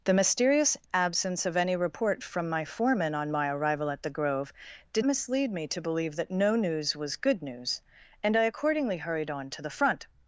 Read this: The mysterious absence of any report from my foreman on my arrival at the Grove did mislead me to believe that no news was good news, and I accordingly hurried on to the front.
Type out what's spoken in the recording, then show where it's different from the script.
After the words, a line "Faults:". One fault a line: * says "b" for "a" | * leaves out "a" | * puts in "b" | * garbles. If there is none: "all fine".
The mysterious absence of any report from my foreman on my arrival at the Grove did mislead me to believe that no news was good news, and I accordingly hurried on to the front.
Faults:
all fine